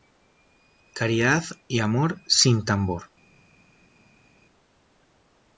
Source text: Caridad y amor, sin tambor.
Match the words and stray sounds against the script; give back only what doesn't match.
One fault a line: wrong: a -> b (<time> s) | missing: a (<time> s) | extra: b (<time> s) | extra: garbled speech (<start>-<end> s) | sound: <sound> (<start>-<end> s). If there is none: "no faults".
no faults